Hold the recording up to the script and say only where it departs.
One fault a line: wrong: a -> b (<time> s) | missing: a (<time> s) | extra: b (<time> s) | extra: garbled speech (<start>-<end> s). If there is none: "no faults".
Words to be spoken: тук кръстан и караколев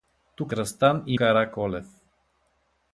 no faults